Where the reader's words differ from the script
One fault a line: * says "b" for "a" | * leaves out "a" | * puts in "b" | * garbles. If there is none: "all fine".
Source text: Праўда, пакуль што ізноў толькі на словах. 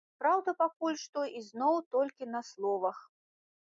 all fine